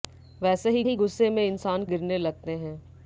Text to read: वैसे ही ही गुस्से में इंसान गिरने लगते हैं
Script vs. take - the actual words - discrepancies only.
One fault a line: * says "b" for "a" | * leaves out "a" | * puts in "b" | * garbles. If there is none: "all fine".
all fine